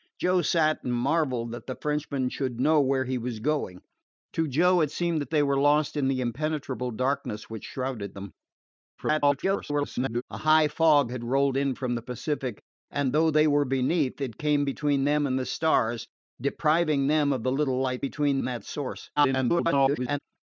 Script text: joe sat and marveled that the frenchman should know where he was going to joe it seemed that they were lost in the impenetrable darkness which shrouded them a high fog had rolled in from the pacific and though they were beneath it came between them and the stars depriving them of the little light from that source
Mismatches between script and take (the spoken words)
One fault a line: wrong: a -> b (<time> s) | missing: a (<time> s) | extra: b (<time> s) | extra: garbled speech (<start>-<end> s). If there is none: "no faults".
extra: garbled speech (9.0-10.2 s)
wrong: from -> between (18.0 s)
extra: garbled speech (19.2-20.2 s)